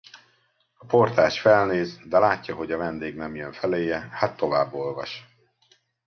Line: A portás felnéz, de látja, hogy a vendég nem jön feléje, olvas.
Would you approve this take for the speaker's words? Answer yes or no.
no